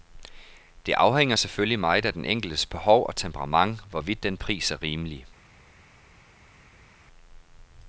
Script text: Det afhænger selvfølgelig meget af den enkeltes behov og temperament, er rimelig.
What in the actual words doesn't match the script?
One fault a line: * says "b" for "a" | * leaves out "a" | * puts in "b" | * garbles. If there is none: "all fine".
* puts in "hvorvidt den pris"